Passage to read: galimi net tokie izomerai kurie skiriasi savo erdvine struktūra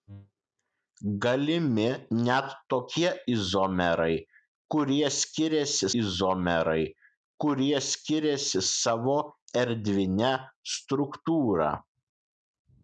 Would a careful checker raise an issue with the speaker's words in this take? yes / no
yes